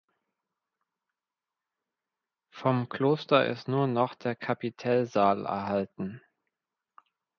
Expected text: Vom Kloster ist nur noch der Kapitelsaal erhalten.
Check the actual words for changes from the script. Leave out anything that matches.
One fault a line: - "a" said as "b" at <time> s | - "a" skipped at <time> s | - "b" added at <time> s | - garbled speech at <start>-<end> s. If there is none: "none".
none